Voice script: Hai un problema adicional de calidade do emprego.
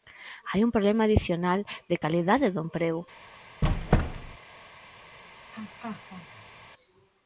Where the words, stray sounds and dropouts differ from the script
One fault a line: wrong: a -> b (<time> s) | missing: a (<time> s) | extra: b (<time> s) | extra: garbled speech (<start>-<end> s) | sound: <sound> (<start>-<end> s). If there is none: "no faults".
sound: squeak (3.6-4.4 s)
sound: laugh (5.5-6.7 s)